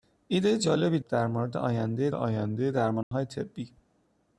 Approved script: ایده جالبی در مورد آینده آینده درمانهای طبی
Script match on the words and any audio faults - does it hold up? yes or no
no